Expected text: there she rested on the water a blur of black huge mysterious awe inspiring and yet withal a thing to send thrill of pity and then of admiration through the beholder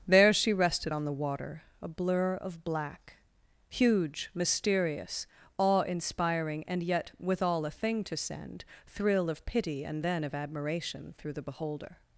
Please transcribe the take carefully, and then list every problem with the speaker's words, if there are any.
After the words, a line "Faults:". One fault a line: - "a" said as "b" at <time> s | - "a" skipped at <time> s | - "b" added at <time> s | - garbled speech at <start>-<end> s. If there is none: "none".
there she rested on the water a blur of black huge mysterious awe inspiring and yet withal a thing to send thrill of pity and then of admiration through the beholder
Faults:
none